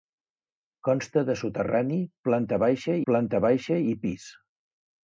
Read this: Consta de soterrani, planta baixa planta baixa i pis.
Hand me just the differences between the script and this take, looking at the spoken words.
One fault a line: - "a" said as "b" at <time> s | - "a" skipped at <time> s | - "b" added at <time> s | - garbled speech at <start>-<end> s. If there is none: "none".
none